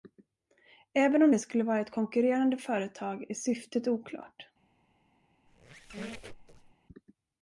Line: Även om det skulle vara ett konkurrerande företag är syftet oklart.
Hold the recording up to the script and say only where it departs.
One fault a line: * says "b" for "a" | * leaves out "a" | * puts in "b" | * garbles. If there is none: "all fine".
all fine